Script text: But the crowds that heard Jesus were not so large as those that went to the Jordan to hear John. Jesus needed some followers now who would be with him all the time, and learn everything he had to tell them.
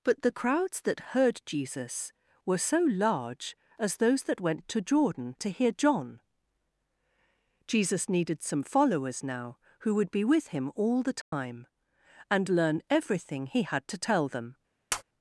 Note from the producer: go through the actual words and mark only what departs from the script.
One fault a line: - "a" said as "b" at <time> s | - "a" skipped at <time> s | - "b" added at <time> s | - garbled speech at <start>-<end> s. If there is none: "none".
- "not" skipped at 2.6 s
- "the" skipped at 4.8 s